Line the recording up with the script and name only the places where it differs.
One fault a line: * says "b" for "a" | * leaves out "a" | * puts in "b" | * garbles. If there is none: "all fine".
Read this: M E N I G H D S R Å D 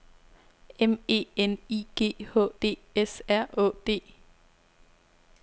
all fine